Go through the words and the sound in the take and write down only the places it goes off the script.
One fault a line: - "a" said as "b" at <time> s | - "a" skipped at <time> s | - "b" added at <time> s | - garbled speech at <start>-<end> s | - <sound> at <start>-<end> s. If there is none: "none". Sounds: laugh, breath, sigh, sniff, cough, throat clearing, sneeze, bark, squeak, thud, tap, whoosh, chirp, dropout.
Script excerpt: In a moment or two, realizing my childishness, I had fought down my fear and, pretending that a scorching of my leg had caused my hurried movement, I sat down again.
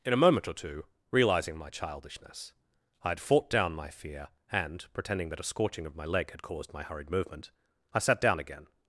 none